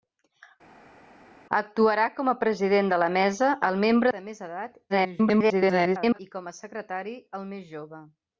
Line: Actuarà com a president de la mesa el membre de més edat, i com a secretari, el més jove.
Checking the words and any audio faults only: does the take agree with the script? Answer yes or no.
no